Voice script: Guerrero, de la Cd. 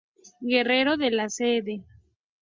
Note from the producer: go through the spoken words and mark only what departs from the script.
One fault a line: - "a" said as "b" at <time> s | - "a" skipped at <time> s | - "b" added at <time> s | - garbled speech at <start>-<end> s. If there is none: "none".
none